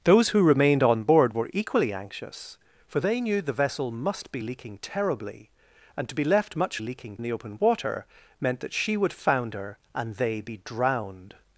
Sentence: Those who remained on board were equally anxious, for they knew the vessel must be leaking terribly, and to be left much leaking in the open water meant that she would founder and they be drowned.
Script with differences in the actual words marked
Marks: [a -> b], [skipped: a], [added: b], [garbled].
Those who remained on board were equally anxious, for they knew the vessel must be leaking terribly, and to be left much leaking in the open water meant that she would founder and they be drowned.